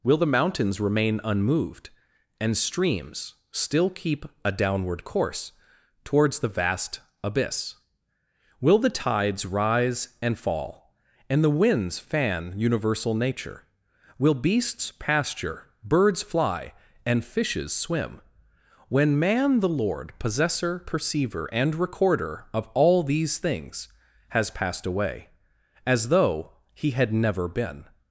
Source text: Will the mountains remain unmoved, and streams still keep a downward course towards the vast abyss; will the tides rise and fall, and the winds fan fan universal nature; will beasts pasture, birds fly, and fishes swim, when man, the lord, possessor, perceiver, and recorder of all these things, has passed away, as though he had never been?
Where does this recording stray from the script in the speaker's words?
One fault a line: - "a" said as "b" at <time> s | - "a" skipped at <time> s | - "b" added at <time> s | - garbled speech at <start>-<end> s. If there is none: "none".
- "fan" skipped at 12.5 s